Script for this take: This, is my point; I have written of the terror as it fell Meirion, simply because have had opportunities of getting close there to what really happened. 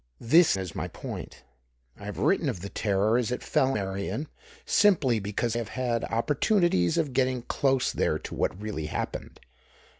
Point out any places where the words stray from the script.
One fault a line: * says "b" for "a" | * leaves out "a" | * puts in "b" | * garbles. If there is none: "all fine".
all fine